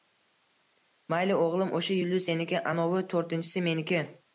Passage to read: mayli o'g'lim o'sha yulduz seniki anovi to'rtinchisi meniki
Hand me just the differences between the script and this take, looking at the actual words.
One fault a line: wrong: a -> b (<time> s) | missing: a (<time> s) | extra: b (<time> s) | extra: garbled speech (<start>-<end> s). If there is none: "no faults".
no faults